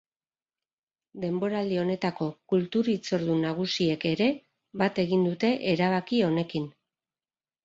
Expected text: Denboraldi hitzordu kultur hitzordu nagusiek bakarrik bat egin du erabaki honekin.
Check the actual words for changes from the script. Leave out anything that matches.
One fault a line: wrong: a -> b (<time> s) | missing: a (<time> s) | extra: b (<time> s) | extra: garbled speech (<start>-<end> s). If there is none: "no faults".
wrong: hitzordu -> honetako (1.8 s)
wrong: bakarrik -> ere (4.1 s)
wrong: du -> dute (5.3 s)